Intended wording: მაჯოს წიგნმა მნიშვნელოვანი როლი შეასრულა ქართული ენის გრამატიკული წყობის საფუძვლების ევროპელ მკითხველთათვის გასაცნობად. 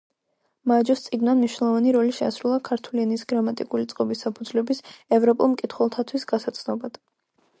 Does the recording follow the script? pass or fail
pass